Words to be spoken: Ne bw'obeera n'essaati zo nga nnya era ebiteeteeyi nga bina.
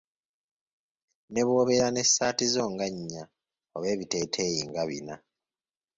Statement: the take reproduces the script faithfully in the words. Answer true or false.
false